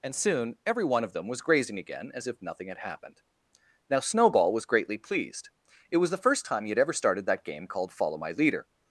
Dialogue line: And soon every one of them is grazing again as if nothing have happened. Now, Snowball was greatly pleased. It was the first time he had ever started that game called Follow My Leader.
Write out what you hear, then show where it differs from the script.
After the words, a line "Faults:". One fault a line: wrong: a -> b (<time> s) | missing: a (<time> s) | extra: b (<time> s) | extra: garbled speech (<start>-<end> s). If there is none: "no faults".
And soon every one of them was grazing again as if nothing had happened. Now, Snowball was greatly pleased. It was the first time he had ever started that game called Follow My Leader.
Faults:
wrong: is -> was (1.3 s)
wrong: have -> had (2.7 s)